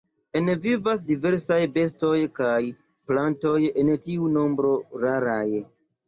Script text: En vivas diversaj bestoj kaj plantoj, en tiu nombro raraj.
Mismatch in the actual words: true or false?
false